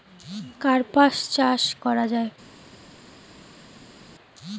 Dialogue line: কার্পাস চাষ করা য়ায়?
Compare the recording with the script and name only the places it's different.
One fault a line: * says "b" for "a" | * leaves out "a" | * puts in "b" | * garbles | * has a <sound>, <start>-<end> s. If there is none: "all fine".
all fine